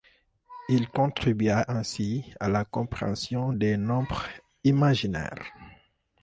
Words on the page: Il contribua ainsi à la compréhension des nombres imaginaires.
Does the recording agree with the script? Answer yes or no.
yes